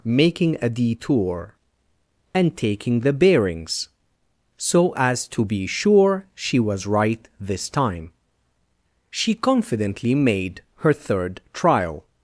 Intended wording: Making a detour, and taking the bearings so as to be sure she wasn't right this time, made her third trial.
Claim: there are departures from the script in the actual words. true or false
true